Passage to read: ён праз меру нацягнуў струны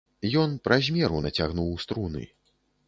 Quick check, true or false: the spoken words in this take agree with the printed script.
true